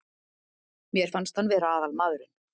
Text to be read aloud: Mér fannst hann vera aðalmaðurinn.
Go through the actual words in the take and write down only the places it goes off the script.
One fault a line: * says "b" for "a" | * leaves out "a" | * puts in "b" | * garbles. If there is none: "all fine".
all fine